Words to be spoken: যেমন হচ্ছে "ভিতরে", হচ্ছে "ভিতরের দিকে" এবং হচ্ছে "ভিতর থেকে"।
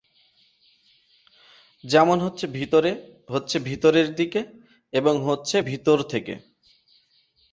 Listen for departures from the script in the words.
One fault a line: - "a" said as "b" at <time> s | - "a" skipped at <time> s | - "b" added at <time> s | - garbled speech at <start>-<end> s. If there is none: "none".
none